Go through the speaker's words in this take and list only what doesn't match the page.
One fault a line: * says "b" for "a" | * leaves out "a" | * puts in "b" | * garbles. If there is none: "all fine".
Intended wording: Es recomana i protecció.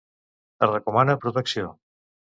all fine